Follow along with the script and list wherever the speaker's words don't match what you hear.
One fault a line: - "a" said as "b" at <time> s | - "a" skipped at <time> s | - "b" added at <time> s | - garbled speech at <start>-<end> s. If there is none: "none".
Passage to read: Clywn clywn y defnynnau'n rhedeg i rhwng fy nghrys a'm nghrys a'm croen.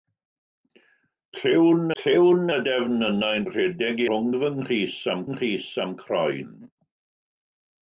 none